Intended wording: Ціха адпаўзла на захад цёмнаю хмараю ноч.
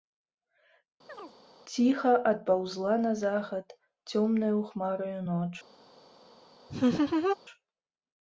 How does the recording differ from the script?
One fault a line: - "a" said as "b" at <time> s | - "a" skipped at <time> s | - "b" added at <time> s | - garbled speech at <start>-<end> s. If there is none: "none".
none